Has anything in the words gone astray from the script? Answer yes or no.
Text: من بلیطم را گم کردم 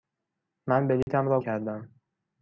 yes